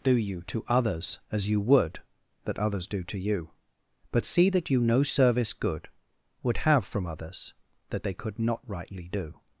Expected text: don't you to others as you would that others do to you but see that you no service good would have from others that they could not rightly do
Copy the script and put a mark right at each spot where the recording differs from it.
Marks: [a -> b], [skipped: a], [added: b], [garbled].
[don't -> do] you to others as you would that others do to you but see that you no service good would have from others that they could not rightly do